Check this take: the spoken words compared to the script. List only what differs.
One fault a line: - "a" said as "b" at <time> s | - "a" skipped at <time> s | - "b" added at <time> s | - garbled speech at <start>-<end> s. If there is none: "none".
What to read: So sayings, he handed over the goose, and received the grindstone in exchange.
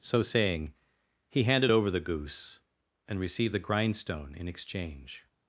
- "sayings" said as "saying" at 0.2 s